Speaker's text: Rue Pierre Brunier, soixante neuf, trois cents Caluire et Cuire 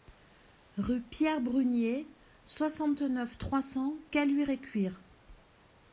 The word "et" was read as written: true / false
true